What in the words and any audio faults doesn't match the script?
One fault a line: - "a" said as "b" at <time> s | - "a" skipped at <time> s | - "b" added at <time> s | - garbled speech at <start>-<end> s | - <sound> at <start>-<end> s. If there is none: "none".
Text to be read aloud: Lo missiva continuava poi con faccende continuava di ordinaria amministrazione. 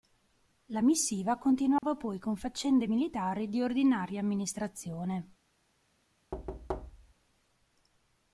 - "Lo" said as "La" at 0.7 s
- dropout at 1.8-1.8 s
- "continuava" said as "militari" at 2.9 s
- thud at 6.3-7.1 s